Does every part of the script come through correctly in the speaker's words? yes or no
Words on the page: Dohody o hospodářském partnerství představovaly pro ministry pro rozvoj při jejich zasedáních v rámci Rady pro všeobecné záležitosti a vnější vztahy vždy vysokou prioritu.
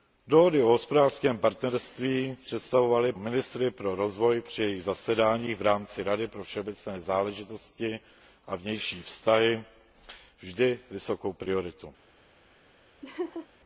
no